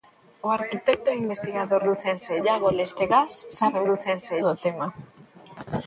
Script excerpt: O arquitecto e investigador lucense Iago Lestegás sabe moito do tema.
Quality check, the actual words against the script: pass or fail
fail